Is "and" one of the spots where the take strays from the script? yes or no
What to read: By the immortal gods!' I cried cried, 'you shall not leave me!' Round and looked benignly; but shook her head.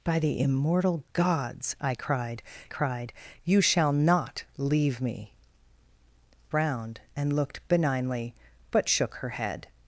no